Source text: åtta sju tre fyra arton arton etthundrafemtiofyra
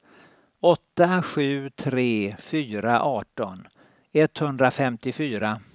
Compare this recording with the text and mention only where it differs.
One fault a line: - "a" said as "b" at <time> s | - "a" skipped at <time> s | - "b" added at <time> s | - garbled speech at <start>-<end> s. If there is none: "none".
- "arton" skipped at 3.7 s